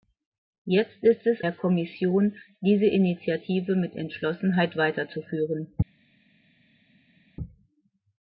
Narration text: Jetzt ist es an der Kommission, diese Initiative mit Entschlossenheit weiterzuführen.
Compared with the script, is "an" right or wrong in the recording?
wrong